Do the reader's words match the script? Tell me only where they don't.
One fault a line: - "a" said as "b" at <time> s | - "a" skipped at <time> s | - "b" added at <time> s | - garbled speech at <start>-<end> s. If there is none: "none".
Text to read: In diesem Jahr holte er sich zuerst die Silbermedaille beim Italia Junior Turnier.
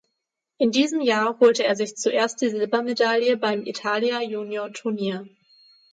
none